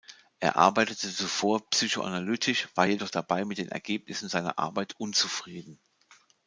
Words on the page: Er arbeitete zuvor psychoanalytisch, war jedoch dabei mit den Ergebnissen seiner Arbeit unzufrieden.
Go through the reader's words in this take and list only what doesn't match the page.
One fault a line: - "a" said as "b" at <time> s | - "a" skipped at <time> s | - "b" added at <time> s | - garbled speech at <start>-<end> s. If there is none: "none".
none